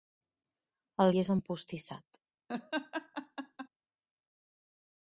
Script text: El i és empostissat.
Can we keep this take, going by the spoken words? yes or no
yes